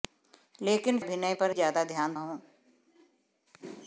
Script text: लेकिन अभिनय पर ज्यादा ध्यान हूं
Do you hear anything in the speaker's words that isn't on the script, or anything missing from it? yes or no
no